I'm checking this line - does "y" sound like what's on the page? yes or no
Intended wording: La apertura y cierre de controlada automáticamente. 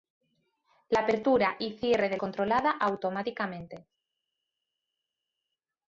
yes